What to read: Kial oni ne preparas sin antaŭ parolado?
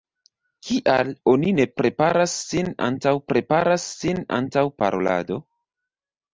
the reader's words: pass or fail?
fail